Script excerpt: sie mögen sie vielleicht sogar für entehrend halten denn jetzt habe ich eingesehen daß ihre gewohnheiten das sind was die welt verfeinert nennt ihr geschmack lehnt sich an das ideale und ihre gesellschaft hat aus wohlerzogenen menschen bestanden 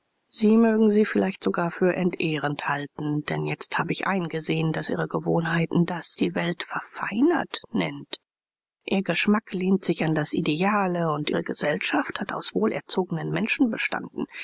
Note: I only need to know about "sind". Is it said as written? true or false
false